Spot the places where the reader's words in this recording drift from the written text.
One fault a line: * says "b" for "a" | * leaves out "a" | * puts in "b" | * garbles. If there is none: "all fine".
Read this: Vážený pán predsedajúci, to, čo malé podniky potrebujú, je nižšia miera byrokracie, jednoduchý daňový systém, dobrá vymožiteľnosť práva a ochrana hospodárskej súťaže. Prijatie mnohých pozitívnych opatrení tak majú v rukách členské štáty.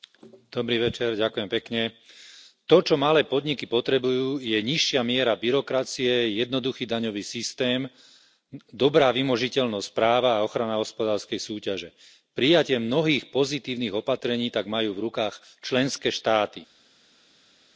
all fine